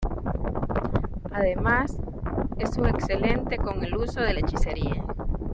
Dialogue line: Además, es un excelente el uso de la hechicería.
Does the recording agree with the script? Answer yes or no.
no